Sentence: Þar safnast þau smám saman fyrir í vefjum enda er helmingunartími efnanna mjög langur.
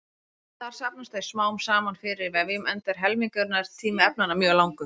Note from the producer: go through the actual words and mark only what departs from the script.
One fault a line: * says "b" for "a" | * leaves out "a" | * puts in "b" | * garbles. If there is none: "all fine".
all fine